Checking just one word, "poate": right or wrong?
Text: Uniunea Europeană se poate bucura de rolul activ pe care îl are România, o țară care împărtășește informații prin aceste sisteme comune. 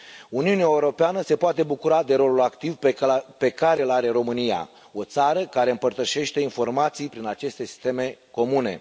right